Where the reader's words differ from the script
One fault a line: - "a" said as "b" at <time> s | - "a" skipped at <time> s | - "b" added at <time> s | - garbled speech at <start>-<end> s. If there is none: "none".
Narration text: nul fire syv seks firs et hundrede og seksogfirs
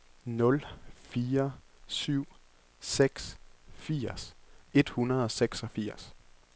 none